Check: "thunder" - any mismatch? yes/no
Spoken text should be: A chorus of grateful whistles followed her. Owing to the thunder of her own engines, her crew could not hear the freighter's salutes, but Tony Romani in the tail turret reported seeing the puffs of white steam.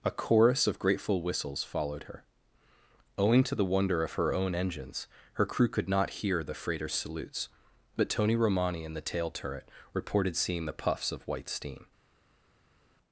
yes